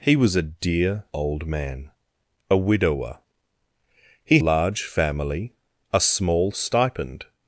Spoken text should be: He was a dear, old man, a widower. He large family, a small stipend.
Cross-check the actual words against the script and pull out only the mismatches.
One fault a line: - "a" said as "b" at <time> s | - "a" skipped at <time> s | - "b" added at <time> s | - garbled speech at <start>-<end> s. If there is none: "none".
none